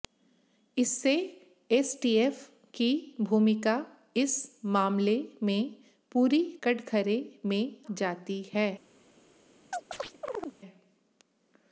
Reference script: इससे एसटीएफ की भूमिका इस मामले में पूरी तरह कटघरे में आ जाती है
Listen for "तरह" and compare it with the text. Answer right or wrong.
wrong